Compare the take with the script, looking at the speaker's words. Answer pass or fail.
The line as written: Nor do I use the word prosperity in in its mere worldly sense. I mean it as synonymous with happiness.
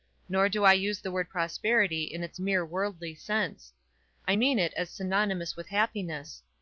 fail